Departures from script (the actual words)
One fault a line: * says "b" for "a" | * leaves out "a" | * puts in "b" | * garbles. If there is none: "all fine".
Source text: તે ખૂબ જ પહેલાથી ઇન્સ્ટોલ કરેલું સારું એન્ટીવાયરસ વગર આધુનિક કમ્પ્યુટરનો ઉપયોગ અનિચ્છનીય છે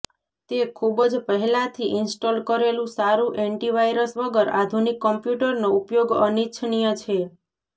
all fine